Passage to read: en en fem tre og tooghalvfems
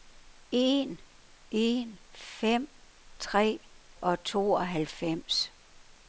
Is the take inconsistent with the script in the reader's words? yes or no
no